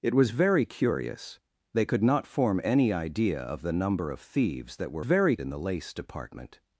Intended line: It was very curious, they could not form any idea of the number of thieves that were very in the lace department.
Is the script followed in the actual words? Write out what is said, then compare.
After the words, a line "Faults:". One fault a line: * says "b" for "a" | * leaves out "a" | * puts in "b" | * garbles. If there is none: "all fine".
It was very curious, they could not form any idea of the number of thieves that were very in the lace department.
Faults:
all fine